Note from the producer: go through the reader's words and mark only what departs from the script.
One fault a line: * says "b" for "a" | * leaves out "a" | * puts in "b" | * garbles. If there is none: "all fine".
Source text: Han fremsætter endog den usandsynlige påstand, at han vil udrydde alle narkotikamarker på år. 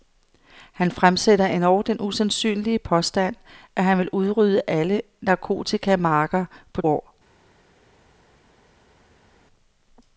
all fine